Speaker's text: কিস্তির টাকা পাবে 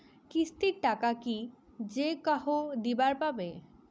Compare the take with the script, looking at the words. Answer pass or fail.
fail